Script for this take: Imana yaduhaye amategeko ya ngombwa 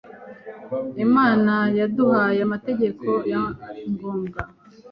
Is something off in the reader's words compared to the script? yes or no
no